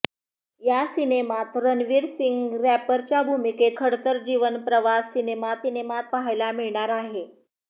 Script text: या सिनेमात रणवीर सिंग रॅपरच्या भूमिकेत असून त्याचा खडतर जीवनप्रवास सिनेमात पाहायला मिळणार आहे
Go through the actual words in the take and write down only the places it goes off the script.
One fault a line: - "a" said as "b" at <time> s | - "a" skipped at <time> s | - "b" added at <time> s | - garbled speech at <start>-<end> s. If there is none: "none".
- "असून त्याचा" skipped at 3.8 s
- "सिनेमात" added at 5.6 s